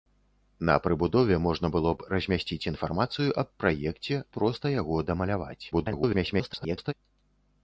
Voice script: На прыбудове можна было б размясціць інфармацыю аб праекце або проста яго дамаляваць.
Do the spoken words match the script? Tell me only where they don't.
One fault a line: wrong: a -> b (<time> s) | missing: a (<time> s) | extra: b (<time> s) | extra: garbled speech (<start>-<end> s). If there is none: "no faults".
missing: або (4.2 s)
extra: garbled speech (5.7-6.9 s)